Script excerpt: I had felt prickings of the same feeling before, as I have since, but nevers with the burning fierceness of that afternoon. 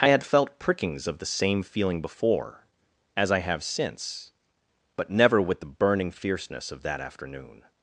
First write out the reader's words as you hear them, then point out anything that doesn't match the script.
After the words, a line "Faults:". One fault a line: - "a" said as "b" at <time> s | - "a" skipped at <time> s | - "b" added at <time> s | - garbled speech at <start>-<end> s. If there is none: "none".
I had felt prickings of the same feeling before, as I have since, but never with the burning fierceness of that afternoon.
Faults:
- "nevers" said as "never" at 5.1 s